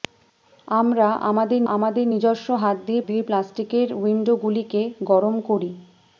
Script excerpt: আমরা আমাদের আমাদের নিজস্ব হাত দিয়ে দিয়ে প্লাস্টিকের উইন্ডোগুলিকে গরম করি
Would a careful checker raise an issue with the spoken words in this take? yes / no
no